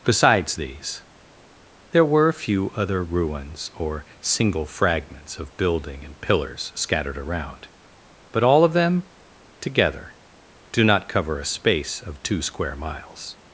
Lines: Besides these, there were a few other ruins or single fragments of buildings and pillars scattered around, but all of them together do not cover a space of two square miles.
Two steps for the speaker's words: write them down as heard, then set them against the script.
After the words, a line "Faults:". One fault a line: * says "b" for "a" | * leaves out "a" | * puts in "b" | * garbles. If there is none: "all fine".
Besides these, there were a few other ruins or single fragments of building and pillars scattered around, but all of them together do not cover a space of two square miles.
Faults:
* says "building" for "buildings"